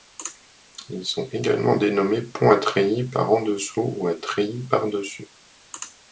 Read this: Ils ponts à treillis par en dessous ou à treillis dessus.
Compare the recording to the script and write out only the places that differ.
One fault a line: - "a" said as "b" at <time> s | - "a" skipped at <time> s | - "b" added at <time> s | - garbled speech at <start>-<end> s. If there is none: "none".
- "sont également dénommés" added at 1.1 s
- "par" added at 4.6 s